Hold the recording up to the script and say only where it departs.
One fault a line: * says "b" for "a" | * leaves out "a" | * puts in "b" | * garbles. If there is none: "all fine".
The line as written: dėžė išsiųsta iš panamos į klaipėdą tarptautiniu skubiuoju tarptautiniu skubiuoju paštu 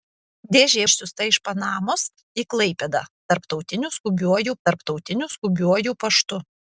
all fine